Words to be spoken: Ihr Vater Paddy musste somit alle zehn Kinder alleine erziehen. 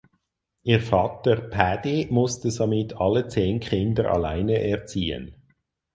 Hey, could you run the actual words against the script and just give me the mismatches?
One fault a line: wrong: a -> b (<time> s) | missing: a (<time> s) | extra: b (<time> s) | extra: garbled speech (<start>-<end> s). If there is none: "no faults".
no faults